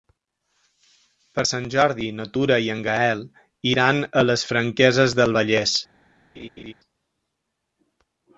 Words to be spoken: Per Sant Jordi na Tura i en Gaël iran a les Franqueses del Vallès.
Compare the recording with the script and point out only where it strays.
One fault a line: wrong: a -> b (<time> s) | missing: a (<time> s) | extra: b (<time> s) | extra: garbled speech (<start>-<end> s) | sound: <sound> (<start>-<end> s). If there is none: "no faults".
sound: laugh (6.3-6.7 s)